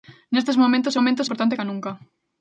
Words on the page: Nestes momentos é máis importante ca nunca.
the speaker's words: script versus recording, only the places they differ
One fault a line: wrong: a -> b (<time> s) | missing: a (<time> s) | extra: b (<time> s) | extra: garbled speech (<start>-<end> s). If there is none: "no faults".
wrong: máis -> momentos (1.0 s)